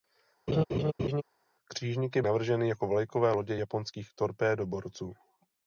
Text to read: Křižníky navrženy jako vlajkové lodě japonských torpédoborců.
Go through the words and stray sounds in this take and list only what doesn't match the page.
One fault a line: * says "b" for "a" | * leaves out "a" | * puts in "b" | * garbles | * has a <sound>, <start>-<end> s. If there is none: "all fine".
* has a laugh, 0.5-1.2 s